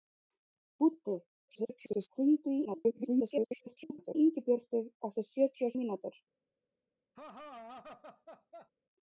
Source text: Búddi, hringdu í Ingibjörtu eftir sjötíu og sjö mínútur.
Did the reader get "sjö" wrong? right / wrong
wrong